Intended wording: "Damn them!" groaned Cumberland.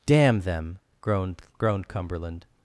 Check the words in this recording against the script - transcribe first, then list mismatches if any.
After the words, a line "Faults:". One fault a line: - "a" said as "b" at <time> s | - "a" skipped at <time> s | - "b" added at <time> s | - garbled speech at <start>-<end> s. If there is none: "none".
"Damn them!" groaned groaned Cumberland.
Faults:
- "groaned" added at 1.6 s